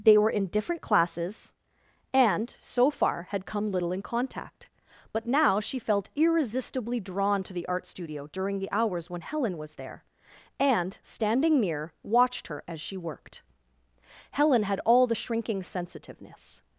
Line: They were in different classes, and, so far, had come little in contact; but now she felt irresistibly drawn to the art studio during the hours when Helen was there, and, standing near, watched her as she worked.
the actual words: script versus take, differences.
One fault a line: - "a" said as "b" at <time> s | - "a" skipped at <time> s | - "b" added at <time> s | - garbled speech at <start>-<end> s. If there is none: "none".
- "Helen had all the shrinking sensitiveness" added at 14.3 s